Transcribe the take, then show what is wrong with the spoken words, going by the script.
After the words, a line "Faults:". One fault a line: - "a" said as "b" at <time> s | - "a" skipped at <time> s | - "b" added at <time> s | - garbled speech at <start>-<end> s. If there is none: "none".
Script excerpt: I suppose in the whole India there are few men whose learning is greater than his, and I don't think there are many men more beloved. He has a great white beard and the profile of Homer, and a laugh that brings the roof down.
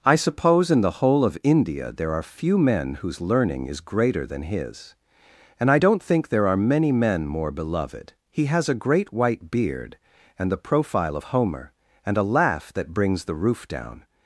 I suppose in the whole of India there are few men whose learning is greater than his, and I don't think there are many men more beloved. He has a great white beard and the profile of Homer, and a laugh that brings the roof down.
Faults:
- "of" added at 1.2 s